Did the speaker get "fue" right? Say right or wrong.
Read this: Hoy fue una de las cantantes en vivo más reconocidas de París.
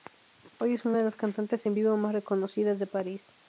wrong